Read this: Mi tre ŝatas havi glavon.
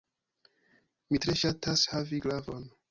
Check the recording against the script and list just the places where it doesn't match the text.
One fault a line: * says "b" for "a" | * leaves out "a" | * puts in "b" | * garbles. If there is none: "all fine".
all fine